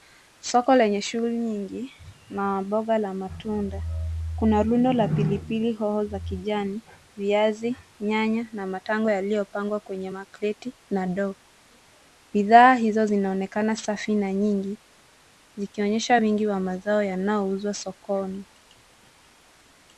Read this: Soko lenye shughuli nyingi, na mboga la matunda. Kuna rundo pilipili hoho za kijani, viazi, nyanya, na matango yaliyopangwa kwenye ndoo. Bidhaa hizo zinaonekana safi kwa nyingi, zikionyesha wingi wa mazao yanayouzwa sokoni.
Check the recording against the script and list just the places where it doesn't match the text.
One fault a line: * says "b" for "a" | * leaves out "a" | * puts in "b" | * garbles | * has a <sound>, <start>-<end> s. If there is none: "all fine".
* puts in "la"
* puts in "makreti na"
* says "na" for "kwa"